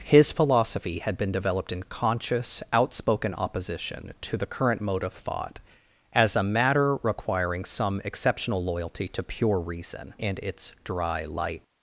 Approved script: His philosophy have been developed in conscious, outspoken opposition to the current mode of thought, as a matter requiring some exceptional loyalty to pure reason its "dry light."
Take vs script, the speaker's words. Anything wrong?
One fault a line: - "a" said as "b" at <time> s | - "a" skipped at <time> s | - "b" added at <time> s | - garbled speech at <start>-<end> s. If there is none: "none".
- "have" said as "had" at 1.0 s
- "and" added at 10.2 s